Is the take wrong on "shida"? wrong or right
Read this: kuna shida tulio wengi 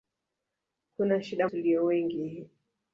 right